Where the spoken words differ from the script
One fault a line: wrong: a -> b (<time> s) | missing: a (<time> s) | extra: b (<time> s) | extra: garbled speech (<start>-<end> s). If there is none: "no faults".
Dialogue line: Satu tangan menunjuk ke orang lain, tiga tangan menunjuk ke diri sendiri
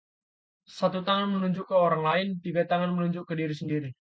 no faults